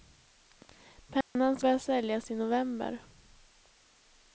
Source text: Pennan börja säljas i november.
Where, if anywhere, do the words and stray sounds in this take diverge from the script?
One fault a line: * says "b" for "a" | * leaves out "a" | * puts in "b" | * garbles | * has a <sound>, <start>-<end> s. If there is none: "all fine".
* has a dropout, 1.2-1.4 s